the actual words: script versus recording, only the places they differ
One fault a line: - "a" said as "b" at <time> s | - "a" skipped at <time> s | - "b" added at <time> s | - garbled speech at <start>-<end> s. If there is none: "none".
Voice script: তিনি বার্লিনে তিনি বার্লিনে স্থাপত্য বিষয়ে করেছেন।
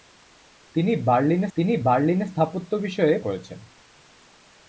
none